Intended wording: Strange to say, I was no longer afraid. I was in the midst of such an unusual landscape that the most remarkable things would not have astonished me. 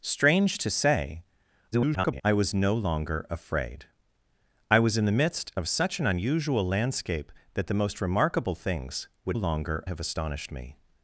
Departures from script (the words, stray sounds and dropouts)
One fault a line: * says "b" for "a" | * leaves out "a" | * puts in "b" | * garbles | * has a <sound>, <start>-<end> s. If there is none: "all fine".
* garbles
* says "longer" for "not"